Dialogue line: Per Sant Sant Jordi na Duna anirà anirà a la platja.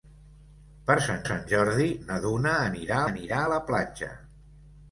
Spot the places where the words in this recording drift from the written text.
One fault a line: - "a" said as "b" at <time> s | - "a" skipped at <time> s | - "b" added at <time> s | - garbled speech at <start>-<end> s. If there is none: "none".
none